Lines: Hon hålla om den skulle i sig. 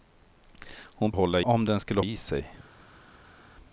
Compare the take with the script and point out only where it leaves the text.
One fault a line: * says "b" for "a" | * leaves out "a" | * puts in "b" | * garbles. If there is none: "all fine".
all fine